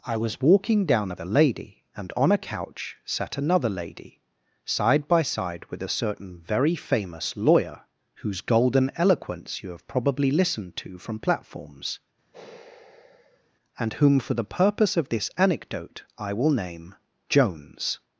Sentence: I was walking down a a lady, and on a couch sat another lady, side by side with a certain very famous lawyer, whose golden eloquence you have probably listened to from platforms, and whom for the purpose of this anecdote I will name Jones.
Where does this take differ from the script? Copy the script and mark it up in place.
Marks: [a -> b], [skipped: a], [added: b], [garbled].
I was walking down a a lady, and on a couch sat another lady, side by side with a certain very famous lawyer, whose golden eloquence you have probably listened to from platforms, and whom for the purpose of this anecdote I will name Jones.